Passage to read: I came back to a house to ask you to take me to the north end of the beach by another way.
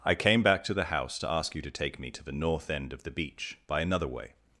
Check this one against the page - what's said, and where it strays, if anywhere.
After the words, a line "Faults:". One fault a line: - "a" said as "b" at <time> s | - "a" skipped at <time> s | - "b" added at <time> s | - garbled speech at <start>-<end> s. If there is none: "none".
I came back to the house to ask you to take me to the north end of the beach by another way.
Faults:
- "a" said as "the" at 0.7 s